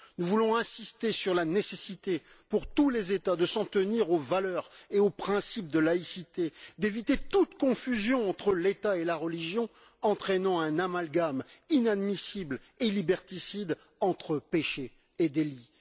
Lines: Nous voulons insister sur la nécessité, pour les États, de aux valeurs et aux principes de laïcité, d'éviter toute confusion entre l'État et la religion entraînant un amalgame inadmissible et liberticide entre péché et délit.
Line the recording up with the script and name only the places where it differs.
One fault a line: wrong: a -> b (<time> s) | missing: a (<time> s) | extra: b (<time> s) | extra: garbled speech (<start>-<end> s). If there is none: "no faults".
extra: tous (2.7 s)
extra: s'en tenir (3.5 s)